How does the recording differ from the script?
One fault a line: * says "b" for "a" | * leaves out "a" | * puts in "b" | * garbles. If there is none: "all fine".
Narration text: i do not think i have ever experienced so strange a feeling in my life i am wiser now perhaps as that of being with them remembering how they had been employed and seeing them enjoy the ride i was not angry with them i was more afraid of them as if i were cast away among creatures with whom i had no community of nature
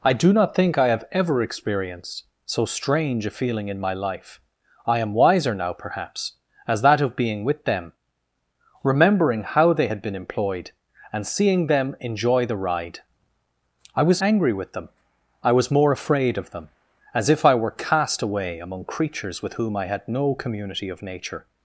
* leaves out "not"